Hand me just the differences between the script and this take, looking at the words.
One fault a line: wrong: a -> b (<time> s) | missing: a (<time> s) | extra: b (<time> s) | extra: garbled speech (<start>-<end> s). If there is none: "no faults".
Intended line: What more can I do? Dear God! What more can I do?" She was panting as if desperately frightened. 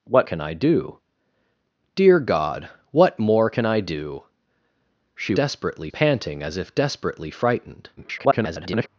missing: more (0.3 s)
wrong: was -> desperately (5.3 s)
extra: garbled speech (8.0-8.9 s)